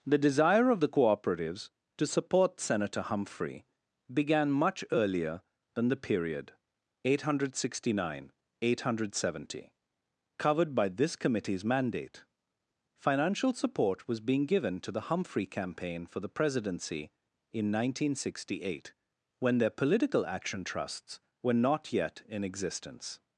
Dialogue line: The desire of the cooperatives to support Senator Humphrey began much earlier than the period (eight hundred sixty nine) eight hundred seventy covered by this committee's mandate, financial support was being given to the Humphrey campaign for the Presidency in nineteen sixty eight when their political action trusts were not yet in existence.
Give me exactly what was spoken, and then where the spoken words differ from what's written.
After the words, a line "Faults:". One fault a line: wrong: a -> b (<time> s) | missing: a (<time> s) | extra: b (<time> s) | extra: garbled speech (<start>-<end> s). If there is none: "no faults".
The desire of the cooperatives to support Senator Humphrey began much earlier than the period (eight hundred sixty nine) eight hundred seventy covered by this committee's mandate, financial support was being given to the Humphrey campaign for the Presidency in nineteen sixty eight when their political action trusts were not yet in existence.
Faults:
no faults